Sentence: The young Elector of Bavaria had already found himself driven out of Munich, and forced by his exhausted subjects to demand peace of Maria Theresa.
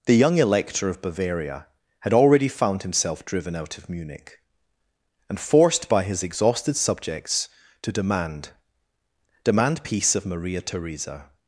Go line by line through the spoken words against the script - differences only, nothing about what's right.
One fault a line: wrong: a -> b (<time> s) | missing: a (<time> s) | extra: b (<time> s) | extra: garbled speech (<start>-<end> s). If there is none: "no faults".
extra: demand (9.4 s)